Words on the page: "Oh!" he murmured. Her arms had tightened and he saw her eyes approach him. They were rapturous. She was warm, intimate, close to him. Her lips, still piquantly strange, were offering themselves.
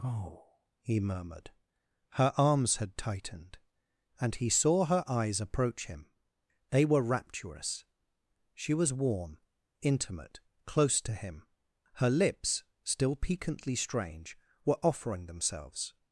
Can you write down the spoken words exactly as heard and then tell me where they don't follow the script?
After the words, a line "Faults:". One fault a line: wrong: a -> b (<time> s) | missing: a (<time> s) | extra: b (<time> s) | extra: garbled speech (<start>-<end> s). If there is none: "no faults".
"Oh!" he murmured. Her arms had tightened and he saw her eyes approach him. They were rapturous. She was warm, intimate, close to him. Her lips, still piquantly strange, were offering themselves.
Faults:
no faults